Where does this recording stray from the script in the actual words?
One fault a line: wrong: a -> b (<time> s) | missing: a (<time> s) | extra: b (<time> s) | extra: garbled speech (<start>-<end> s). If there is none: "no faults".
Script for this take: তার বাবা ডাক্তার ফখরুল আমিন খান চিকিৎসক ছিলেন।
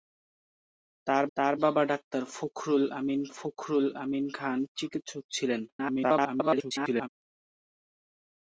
extra: তার (1.4 s)
extra: ফখরুল আমিন (3.4 s)
extra: garbled speech (5.7-7.1 s)